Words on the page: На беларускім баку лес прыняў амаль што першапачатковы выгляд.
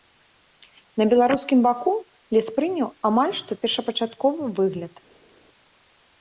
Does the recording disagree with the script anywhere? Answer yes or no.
no